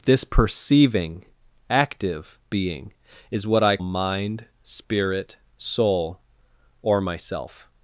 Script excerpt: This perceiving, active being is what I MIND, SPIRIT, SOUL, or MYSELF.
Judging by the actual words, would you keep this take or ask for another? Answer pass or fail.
pass